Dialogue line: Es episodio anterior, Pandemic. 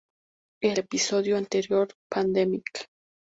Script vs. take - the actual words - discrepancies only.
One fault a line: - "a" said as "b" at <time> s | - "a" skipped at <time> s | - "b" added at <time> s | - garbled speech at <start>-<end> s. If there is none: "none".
none